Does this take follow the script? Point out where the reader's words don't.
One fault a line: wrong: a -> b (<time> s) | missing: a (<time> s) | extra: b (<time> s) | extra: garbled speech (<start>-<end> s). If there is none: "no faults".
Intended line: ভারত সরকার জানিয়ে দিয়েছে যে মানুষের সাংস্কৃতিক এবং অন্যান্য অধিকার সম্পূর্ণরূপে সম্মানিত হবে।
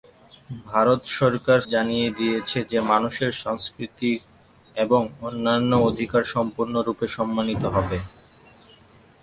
no faults